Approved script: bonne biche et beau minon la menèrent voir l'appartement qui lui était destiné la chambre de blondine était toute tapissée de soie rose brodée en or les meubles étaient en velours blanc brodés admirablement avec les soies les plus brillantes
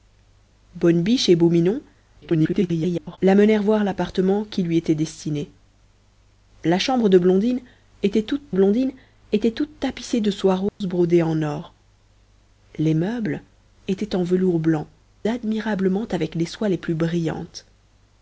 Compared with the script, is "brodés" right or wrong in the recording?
wrong